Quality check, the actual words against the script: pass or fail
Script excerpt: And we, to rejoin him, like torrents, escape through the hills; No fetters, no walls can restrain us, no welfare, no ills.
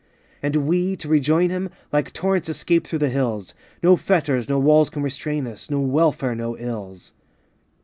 pass